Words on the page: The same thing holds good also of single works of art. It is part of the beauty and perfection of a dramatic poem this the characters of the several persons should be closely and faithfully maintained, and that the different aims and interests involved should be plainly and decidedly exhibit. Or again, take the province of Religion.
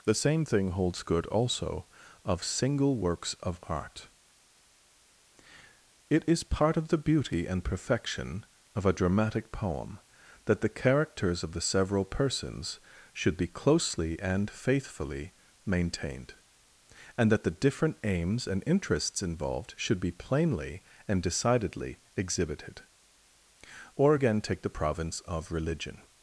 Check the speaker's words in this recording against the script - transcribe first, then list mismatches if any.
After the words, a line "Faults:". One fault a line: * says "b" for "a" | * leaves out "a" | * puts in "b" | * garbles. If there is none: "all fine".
The same thing holds good also of single works of art. It is part of the beauty and perfection of a dramatic poem that the characters of the several persons should be closely and faithfully maintained, and that the different aims and interests involved should be plainly and decidedly exhibited. Or again, take the province of Religion.
Faults:
* says "that" for "this"
* says "exhibited" for "exhibit"